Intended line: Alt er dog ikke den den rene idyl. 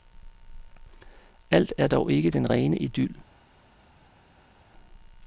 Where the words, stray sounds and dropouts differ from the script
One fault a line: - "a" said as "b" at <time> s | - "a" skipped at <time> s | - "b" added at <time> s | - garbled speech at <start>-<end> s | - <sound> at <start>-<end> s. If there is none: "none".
- "den" skipped at 2.5 s